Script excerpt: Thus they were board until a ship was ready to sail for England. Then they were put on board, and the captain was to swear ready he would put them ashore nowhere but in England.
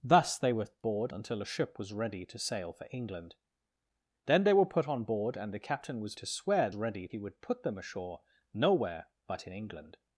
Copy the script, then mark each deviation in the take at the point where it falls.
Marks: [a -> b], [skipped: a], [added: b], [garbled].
Thus they were board until a ship was ready to sail for England. Then they were put on board, and the captain was to swear ready he would put them ashore nowhere but in England.